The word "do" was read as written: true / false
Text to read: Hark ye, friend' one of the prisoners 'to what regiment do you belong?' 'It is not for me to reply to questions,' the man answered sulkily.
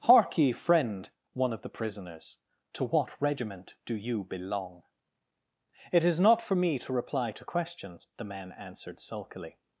true